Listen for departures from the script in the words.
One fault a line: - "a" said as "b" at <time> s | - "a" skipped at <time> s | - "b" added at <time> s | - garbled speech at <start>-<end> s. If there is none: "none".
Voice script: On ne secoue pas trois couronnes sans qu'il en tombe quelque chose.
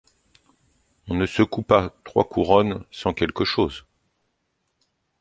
- "qu'il en tombe" skipped at 3.1 s